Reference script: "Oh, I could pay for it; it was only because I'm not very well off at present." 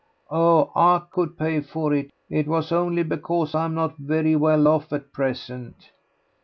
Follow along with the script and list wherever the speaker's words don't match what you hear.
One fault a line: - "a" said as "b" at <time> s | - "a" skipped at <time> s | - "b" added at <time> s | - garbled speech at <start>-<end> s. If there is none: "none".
none